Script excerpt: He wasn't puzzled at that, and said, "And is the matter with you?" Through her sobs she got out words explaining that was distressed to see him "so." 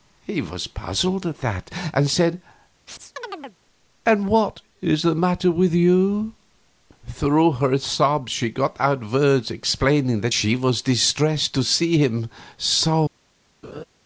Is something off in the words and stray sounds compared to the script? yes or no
yes